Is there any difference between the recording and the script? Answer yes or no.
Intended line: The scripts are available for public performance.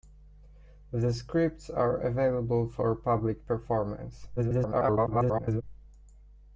yes